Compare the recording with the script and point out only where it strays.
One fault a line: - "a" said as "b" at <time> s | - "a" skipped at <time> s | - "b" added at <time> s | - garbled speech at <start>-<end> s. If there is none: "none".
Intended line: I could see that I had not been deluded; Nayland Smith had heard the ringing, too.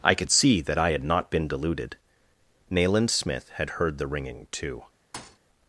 none